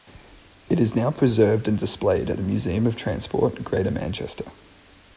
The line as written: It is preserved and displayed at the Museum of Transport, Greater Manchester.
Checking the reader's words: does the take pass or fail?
fail